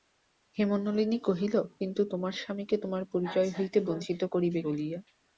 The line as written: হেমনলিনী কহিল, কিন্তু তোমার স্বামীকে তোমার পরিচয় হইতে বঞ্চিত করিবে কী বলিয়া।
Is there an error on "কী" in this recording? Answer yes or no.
yes